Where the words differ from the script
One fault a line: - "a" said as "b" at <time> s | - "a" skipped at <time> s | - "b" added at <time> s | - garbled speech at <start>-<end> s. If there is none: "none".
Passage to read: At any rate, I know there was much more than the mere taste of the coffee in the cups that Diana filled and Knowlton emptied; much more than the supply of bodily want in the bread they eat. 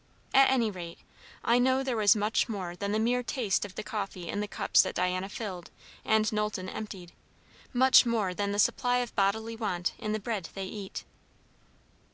none